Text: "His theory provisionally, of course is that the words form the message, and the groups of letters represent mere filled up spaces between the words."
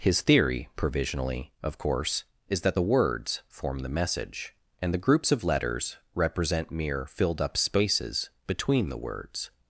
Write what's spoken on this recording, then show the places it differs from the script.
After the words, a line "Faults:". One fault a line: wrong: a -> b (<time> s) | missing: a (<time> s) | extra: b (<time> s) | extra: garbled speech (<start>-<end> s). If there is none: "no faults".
"His theory provisionally, of course is that the words form the message, and the groups of letters represent mere filled up spaces between the words."
Faults:
no faults